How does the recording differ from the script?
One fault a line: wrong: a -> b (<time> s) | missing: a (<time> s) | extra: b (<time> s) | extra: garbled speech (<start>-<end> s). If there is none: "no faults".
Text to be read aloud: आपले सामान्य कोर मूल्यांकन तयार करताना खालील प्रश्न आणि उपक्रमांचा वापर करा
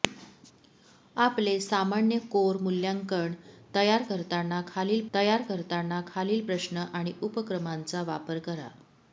extra: तयार करताना खालील (5.1 s)